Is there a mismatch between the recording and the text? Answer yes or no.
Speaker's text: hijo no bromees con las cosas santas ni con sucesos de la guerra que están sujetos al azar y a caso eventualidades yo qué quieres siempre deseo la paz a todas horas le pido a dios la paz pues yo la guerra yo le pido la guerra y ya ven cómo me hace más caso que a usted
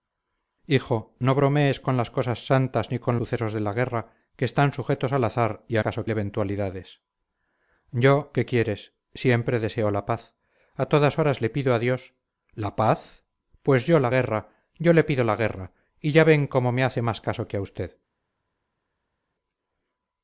no